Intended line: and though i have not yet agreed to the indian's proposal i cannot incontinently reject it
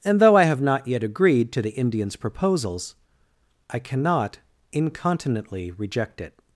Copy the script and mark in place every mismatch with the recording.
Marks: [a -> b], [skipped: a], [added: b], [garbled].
and though i have not yet agreed to the indian's [proposal -> proposals] i cannot incontinently reject it